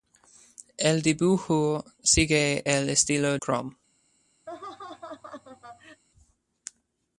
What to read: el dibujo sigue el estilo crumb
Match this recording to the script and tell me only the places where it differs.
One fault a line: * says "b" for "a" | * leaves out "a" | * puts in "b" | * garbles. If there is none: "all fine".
all fine